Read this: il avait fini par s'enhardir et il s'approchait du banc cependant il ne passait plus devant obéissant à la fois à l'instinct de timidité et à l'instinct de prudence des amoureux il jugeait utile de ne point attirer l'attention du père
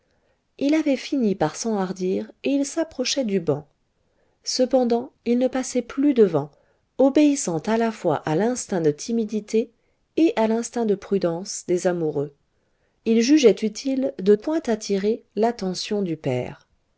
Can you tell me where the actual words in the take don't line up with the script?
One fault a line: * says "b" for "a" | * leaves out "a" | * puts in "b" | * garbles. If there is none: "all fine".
* leaves out "ne"